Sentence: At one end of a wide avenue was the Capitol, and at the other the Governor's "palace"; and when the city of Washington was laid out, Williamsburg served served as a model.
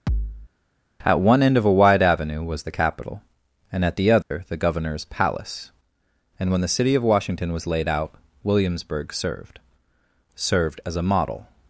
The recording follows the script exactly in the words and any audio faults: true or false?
false